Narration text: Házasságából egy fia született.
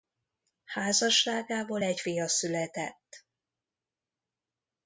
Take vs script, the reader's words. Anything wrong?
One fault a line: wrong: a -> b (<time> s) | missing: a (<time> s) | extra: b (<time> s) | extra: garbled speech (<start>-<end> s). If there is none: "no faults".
no faults